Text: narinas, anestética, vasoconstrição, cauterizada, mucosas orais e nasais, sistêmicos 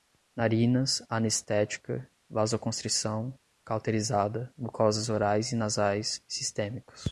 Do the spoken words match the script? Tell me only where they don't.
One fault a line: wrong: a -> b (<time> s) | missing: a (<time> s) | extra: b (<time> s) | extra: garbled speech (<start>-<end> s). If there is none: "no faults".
no faults